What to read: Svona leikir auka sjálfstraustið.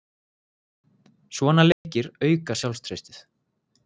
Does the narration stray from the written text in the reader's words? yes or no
no